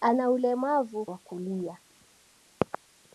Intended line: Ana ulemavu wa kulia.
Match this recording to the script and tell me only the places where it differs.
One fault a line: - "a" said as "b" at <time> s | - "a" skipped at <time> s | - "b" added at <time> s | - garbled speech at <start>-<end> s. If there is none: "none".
none